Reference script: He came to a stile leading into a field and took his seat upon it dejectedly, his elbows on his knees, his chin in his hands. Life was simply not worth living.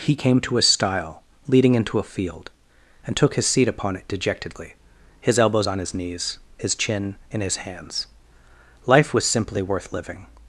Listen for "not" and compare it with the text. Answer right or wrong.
wrong